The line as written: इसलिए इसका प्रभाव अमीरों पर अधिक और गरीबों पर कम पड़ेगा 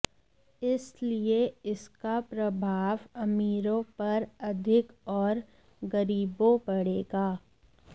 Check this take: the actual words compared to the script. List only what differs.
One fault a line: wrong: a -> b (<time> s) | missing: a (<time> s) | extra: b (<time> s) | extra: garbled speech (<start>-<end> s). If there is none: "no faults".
missing: पर कम (6.6 s)